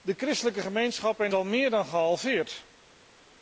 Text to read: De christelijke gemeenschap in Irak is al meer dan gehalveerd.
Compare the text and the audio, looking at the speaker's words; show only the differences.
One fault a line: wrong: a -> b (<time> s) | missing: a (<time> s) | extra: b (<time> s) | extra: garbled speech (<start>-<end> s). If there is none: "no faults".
missing: Irak is (1.3 s)